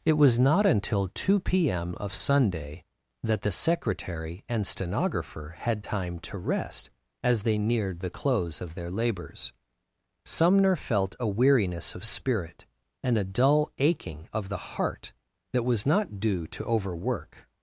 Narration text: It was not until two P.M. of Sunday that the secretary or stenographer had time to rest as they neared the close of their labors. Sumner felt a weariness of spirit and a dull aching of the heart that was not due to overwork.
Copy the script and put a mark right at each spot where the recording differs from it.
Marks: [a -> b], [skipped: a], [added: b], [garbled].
It was not until two P.M. of Sunday that the secretary [or -> and] stenographer had time to rest as they neared the close of their labors. Sumner felt a weariness of spirit and a dull aching of the heart that was not due to overwork.